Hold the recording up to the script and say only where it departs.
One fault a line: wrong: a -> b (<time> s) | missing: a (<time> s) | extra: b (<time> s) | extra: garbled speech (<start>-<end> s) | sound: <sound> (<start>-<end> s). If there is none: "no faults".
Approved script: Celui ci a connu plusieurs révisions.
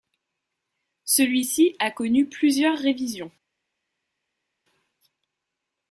no faults